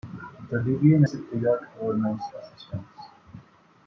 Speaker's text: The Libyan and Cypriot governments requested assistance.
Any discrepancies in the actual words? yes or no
yes